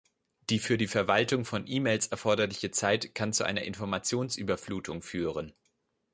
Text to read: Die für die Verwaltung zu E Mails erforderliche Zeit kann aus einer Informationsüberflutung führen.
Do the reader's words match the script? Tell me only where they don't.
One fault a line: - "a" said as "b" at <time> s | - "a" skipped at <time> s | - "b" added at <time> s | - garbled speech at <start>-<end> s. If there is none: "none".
- "zu" said as "von" at 1.4 s
- "aus" said as "zu" at 3.3 s